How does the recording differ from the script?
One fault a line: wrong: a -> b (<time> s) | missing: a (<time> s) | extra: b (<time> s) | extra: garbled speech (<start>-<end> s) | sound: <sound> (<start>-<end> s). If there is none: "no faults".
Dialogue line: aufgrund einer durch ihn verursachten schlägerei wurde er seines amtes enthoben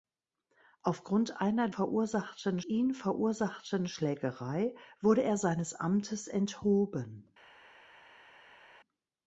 wrong: durch -> verursachten (1.7 s)